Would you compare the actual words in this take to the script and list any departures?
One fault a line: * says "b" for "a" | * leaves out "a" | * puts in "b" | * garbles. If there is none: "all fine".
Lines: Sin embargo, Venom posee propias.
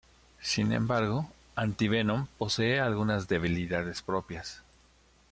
* puts in "Anti"
* puts in "algunas debilidades"